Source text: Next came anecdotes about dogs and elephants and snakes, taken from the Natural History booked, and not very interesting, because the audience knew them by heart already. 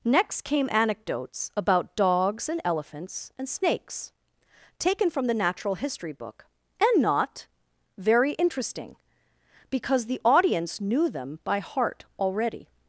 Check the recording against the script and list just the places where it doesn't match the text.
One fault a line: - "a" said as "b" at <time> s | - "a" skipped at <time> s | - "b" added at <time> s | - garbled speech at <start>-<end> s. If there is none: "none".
- "booked" said as "book" at 6.1 s